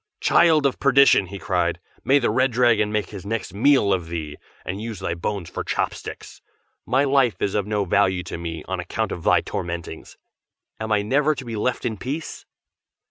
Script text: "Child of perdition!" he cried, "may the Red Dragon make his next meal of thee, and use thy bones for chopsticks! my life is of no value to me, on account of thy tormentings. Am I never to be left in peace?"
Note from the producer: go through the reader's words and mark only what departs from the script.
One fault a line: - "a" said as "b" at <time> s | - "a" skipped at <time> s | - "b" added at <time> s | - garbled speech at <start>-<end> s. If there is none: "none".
none